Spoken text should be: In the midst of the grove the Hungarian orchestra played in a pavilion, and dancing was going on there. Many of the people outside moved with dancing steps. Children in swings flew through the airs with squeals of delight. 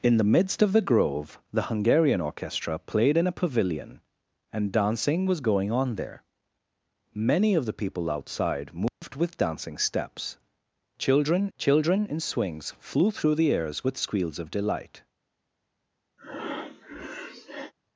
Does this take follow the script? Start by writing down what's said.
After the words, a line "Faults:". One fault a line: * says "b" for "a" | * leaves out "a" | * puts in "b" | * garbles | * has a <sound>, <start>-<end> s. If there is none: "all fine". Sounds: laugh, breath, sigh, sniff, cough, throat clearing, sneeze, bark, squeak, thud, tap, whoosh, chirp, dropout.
In the midst of the grove the Hungarian orchestra played in a pavilion, and dancing was going on there. Many of the people outside moved with dancing steps. Children children in swings flew through the airs with squeals of delight.
Faults:
* has a dropout, 8.9-9.0 s
* puts in "children"
* has a breath, 16.2-17.7 s